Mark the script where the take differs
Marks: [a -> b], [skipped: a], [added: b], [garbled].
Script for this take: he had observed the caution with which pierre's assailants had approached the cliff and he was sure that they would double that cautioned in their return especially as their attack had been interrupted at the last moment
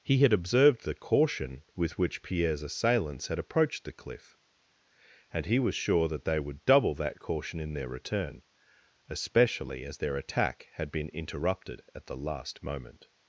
he had observed the caution with which pierre's assailants had approached the cliff and he was sure that they would double that [cautioned -> caution] in their return especially as their attack had been interrupted at the last moment